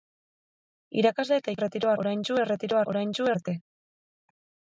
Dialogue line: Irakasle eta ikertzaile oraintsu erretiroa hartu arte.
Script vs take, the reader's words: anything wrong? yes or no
yes